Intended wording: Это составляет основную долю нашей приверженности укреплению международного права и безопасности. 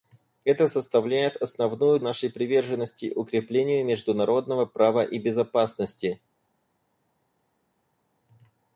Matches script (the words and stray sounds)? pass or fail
fail